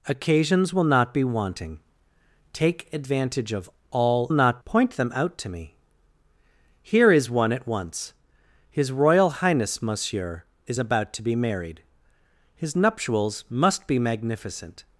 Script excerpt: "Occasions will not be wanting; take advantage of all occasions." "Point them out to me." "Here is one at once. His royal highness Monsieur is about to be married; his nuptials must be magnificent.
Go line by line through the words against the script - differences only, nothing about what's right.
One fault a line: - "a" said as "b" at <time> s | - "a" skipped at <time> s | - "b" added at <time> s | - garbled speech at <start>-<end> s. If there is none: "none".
- "occasions" said as "not" at 4.3 s